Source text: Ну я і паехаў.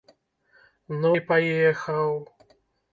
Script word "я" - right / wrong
wrong